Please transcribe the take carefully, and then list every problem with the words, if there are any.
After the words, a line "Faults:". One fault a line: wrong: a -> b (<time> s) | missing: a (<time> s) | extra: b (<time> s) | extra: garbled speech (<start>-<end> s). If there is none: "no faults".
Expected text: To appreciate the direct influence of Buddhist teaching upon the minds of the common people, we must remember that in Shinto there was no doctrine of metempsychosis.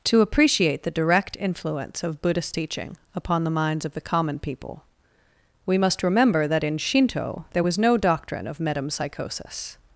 To appreciate the direct influence of Buddhist teaching upon the minds of the common people, we must remember that in Shinto there was no doctrine of metempsychosis.
Faults:
no faults